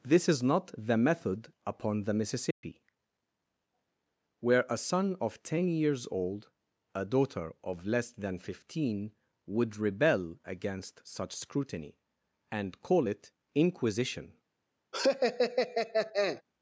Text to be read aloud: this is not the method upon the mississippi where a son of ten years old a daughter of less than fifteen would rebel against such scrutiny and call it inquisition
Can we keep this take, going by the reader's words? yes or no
yes